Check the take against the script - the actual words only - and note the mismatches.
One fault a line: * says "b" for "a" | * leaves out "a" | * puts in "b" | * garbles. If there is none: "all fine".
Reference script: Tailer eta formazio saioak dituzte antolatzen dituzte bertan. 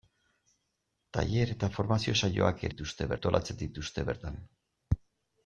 all fine